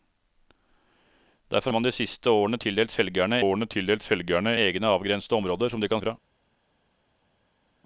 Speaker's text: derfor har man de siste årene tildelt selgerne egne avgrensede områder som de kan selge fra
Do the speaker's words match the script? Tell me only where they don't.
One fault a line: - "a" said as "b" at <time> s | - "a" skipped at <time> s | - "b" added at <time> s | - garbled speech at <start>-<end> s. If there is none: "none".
- "har" skipped at 1.7 s
- "årene tildelt selgerne" added at 3.4 s
- "selge" skipped at 6.0 s